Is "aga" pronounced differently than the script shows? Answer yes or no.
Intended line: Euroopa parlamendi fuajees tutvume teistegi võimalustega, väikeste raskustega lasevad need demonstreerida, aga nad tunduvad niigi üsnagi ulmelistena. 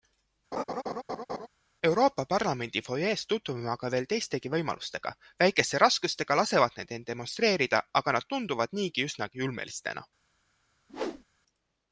no